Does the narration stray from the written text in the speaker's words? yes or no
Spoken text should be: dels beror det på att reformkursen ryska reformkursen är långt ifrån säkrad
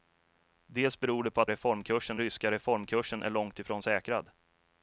no